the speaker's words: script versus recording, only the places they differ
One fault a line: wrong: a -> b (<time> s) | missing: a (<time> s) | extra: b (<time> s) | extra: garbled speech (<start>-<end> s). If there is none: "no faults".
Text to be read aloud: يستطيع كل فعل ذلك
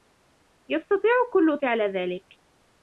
no faults